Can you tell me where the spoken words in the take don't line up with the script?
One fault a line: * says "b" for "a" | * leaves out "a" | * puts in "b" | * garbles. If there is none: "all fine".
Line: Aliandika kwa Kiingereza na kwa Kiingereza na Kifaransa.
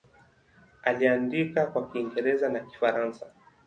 * leaves out "kwa Kiingereza na"